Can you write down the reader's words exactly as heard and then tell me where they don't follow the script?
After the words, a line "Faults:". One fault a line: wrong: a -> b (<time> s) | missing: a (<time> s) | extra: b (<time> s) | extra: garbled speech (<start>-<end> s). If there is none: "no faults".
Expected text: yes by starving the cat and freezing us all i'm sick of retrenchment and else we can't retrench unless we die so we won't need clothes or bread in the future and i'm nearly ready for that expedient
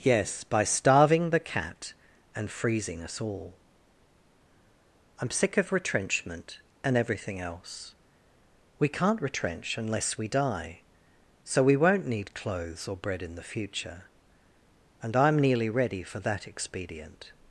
yes by starving the cat and freezing us all i'm sick of retrenchment and everything else we can't retrench unless we die so we won't need clothes or bread in the future and i'm nearly ready for that expedient
Faults:
extra: everything (7.0 s)